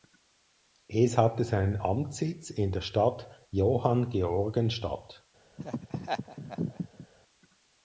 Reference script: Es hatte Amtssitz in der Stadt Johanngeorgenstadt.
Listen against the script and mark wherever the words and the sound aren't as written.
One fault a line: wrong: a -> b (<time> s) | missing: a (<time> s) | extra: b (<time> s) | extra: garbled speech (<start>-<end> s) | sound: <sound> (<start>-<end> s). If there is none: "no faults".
extra: seinen (1.4 s)
sound: laugh (5.6-7.1 s)